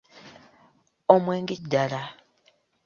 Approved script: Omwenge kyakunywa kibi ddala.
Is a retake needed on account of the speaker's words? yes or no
yes